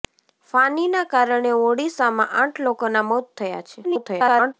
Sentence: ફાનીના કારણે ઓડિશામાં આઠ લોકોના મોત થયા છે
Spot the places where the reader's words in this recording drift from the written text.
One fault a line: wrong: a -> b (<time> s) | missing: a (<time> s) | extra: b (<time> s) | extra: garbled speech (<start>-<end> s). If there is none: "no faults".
extra: garbled speech (3.8-4.5 s)